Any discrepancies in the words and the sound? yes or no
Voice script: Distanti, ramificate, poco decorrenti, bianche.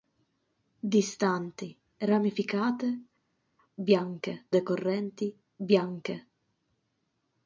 yes